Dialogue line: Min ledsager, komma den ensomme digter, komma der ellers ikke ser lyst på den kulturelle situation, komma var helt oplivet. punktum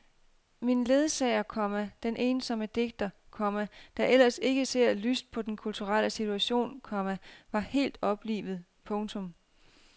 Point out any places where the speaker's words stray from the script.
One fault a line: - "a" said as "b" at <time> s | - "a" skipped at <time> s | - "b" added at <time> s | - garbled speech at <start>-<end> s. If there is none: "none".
none